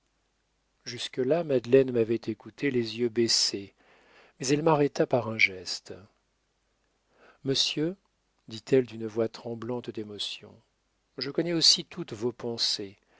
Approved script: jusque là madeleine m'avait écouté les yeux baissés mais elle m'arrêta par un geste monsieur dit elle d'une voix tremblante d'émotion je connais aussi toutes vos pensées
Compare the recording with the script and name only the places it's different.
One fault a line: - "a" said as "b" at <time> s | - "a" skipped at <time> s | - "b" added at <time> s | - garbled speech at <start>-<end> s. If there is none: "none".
none